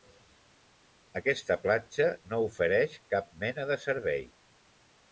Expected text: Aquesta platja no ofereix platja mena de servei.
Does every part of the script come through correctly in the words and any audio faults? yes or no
no